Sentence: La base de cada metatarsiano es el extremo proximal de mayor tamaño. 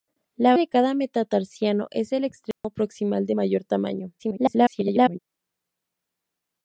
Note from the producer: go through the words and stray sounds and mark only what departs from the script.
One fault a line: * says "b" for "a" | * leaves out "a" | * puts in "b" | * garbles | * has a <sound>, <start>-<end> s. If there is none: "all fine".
* leaves out "base"
* has a dropout, 2.5-2.6 s
* garbles